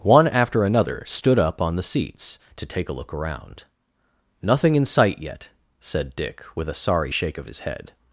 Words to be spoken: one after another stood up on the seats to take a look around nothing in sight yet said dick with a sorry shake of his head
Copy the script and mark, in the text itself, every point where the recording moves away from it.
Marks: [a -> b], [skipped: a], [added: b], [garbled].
one after another stood up on the seats to take a look around nothing in sight yet said dick with a sorry shake of his head